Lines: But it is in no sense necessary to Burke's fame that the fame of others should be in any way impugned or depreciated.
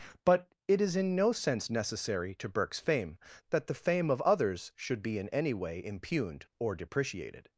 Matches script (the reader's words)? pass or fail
pass